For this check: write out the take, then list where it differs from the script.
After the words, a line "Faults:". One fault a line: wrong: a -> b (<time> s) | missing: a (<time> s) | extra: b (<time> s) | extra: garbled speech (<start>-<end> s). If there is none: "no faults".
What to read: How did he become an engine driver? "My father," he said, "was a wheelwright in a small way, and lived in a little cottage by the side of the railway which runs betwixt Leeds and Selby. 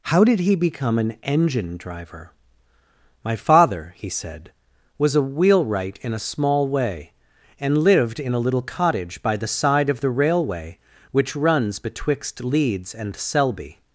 How did he become an engine driver? "My father," he said, "was a wheelwright in a small way, and lived in a little cottage by the side of the railway which runs betwixt Leeds and Selby.
Faults:
no faults